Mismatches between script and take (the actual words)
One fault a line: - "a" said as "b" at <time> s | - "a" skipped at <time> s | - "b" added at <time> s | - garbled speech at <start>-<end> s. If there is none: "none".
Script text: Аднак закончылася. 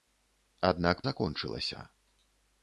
none